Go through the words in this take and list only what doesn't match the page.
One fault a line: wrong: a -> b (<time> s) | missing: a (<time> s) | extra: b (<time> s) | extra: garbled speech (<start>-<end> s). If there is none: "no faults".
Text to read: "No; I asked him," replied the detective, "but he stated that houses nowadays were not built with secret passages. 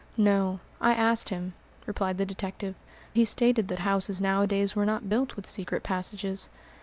missing: but (2.7 s)